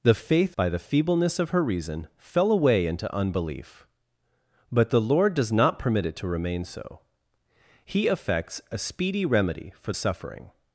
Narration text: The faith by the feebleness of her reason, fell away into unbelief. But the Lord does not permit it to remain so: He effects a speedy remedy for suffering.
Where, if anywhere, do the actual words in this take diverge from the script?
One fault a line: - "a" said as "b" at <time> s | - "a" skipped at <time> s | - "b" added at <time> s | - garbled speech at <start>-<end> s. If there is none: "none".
none